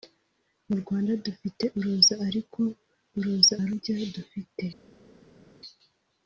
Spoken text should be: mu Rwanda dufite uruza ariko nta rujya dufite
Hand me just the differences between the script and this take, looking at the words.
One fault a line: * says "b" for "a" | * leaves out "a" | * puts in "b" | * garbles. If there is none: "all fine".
* says "uruza" for "nta"